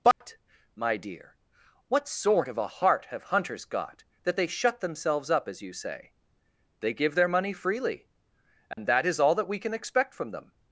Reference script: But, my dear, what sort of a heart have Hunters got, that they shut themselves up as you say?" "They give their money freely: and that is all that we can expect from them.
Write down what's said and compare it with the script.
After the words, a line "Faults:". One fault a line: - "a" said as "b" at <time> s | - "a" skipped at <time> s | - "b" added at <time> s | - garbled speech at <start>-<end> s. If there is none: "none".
But, my dear, what sort of a heart have Hunters got, that they shut themselves up as you say?" "They give their money freely: and that is all that we can expect from them.
Faults:
none